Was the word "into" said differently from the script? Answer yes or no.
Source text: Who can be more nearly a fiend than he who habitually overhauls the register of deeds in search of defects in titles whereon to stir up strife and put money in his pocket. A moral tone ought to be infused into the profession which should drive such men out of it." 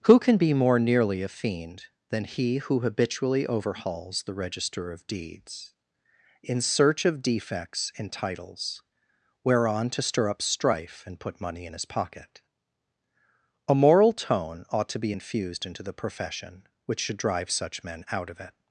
no